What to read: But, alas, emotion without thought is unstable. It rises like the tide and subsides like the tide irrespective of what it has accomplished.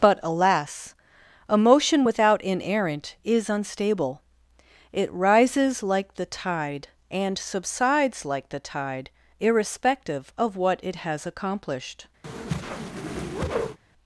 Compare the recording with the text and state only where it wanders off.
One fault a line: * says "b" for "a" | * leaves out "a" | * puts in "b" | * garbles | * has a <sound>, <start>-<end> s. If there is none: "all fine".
* says "inerrant" for "thought"
* has a whoosh, 12.2-13.8 s